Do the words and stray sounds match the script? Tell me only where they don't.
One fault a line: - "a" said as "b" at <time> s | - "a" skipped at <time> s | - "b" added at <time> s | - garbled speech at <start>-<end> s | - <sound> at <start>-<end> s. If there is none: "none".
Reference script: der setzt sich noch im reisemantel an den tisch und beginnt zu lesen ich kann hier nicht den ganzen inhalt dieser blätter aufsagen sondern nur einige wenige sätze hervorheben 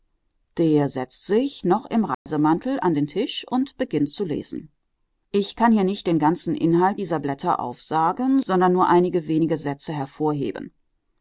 - dropout at 2.1-2.3 s